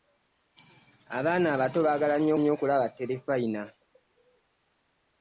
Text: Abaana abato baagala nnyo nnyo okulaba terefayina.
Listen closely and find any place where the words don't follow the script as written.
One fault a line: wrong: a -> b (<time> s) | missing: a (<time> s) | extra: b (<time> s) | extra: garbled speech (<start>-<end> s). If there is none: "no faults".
no faults